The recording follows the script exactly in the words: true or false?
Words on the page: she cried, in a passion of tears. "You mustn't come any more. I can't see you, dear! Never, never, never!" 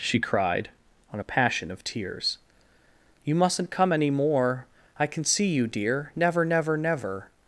false